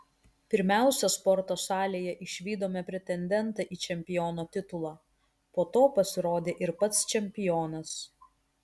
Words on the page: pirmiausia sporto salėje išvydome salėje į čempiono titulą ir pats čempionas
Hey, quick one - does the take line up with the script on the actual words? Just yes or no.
no